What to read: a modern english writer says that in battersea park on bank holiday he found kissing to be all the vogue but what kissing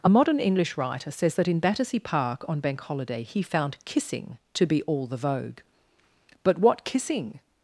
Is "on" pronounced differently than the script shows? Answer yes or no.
no